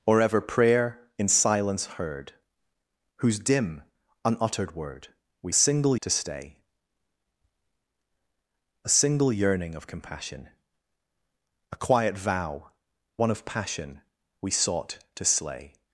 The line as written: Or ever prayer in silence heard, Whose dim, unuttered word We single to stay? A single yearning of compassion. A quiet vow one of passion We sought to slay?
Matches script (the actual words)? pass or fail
pass